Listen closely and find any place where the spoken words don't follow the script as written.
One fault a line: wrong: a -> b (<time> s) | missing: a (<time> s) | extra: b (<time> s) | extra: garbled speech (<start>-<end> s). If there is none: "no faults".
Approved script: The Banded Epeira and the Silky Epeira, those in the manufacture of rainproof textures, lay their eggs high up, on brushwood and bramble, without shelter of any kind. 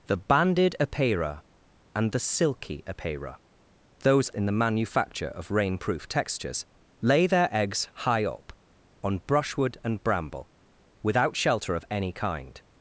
no faults